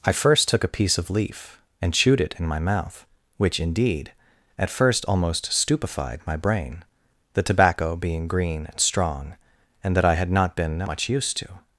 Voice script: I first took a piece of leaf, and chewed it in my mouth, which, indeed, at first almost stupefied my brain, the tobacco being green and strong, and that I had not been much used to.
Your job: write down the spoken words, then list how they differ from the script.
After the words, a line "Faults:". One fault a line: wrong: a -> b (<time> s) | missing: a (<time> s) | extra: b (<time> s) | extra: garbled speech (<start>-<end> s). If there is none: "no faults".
I first took a piece of leaf, and chewed it in my mouth, which, indeed, at first almost stupefied my brain, the tobacco being green and strong, and that I had not been much used to.
Faults:
no faults